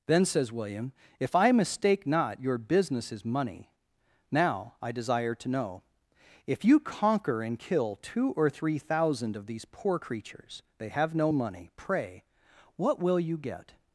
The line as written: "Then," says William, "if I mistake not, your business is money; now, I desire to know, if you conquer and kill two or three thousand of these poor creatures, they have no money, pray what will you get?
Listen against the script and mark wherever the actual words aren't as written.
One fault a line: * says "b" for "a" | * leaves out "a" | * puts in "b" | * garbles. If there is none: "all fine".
all fine